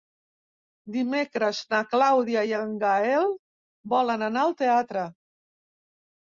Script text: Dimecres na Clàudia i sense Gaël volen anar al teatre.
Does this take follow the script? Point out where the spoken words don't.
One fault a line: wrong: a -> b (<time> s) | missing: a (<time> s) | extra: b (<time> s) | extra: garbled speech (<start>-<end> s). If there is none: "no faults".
wrong: sense -> en (2.6 s)